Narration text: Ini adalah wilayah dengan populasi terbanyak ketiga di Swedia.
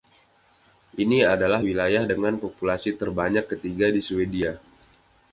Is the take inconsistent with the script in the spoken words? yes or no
no